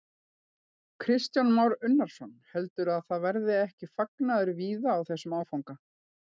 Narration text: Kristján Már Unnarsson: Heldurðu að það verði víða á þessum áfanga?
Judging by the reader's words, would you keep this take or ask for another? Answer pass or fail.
fail